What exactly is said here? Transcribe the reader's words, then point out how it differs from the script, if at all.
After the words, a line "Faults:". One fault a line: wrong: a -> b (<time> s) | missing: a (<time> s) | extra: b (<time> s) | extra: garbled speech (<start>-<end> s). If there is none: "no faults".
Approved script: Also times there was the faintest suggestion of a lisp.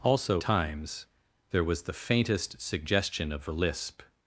Also times there was the faintest suggestion of a lisp.
Faults:
no faults